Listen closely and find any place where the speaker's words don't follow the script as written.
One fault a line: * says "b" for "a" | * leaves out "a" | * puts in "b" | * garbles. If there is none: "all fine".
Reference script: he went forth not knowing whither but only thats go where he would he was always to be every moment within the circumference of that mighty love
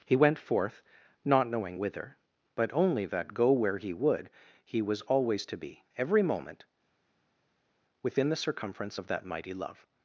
* says "that" for "thats"